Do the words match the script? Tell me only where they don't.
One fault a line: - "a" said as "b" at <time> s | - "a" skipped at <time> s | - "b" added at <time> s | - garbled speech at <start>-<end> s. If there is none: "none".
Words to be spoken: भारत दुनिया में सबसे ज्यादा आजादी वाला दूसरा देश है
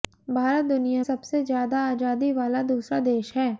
- "में" skipped at 1.0 s